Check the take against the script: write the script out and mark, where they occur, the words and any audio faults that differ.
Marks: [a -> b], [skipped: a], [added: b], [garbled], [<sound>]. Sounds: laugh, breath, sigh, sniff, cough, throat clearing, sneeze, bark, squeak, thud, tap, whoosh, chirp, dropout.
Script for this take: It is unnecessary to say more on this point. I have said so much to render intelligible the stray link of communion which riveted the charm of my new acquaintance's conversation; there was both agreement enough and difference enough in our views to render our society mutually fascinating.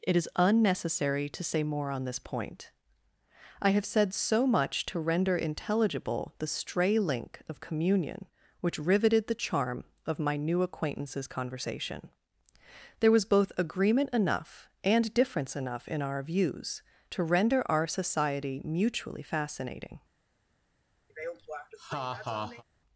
It is unnecessary to say more on this point. I have said so much to render intelligible the stray link of communion which riveted the charm of my new acquaintance's conversation; there was both agreement enough and difference enough in our views to render our society mutually fascinating. [laugh]